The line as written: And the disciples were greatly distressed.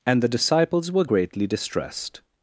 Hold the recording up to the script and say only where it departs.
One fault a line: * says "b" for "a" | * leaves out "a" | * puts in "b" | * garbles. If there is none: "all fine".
all fine